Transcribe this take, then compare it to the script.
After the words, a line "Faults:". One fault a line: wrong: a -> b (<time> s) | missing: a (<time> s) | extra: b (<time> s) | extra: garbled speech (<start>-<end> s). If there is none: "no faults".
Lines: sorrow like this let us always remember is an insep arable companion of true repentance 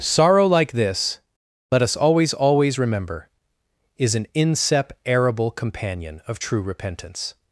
sorrow like this let us always always remember is an insep arable companion of true repentance
Faults:
extra: always (2.3 s)